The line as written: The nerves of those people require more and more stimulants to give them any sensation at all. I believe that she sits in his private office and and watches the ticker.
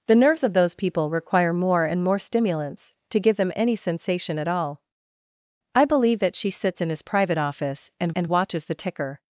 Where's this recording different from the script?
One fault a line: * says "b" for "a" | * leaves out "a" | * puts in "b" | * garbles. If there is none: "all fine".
all fine